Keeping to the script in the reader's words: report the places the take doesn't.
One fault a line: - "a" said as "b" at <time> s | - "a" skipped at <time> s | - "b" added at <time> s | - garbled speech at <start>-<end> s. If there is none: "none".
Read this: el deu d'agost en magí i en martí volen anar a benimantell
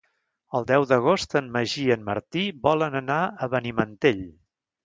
none